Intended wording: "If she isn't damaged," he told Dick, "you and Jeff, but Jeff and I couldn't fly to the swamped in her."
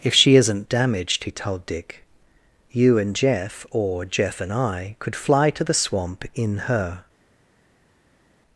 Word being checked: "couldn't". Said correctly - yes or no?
no